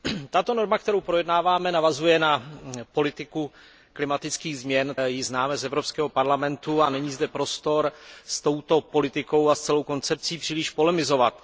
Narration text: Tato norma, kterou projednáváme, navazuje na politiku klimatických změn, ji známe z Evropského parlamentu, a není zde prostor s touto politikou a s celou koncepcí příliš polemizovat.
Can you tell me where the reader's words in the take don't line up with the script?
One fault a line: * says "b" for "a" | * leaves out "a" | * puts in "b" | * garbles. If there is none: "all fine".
all fine